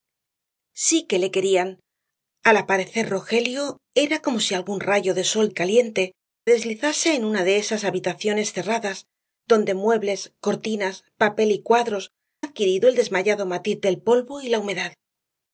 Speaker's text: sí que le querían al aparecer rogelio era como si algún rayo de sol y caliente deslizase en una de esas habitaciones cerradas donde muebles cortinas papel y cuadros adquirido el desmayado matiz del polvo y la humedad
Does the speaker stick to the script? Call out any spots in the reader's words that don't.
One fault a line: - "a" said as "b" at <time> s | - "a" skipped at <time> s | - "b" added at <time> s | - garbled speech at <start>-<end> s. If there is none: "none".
none